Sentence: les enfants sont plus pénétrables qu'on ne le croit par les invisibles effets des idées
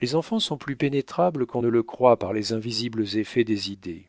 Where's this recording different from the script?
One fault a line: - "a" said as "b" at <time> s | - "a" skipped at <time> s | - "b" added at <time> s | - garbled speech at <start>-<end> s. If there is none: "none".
none